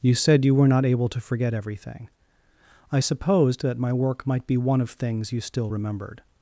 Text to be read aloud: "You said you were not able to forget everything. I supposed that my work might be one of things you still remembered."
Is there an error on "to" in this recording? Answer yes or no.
no